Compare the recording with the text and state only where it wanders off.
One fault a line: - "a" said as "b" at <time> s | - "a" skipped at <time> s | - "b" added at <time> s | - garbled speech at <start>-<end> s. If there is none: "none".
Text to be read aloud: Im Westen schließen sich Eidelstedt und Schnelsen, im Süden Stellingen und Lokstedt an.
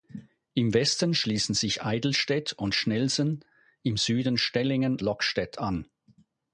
- "und" skipped at 5.0 s